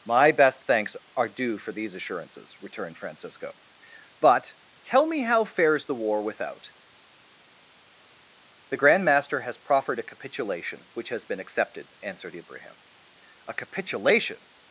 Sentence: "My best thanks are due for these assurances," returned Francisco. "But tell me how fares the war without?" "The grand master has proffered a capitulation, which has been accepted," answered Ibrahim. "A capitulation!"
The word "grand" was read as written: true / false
true